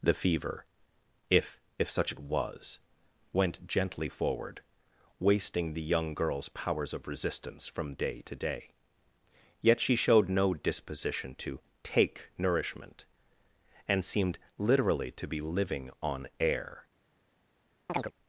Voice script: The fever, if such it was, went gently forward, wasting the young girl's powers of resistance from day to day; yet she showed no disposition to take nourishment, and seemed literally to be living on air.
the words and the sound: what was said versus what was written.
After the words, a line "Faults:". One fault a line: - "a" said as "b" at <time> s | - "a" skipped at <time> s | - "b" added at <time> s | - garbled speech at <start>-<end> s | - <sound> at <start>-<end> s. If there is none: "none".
The fever, if if such it was, went gently forward, wasting the young girl's powers of resistance from day to day; yet she showed no disposition to take nourishment, and seemed literally to be living on air.
Faults:
- "if" added at 1.8 s
- chirp at 17.9-18.1 s